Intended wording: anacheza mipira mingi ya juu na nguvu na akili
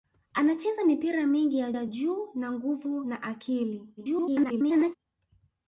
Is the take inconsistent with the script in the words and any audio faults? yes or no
yes